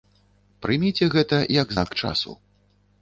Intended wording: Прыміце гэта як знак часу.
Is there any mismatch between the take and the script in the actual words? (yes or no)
no